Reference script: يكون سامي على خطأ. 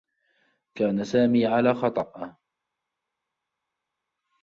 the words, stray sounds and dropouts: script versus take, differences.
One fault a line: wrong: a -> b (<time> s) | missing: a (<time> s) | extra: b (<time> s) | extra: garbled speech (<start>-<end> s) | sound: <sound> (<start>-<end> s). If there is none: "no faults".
wrong: يكون -> كان (0.8 s)